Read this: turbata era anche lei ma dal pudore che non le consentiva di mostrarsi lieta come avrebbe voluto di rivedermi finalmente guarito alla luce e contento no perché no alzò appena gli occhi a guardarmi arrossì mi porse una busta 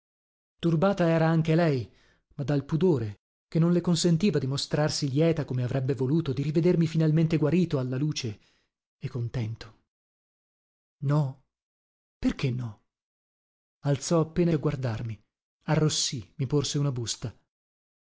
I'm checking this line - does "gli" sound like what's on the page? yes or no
no